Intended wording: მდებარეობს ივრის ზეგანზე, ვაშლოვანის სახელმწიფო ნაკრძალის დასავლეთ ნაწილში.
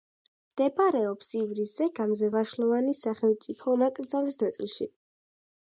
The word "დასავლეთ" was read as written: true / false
false